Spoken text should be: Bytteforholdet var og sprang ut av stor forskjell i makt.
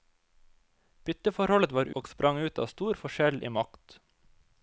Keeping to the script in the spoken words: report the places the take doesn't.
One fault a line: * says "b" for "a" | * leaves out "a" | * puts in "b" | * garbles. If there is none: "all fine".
all fine